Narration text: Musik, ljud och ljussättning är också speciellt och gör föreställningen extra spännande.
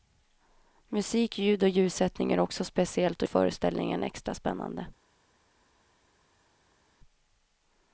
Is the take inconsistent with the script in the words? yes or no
yes